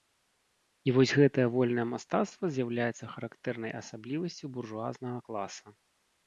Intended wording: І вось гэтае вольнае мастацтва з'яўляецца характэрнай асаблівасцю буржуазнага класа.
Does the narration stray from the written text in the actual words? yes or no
no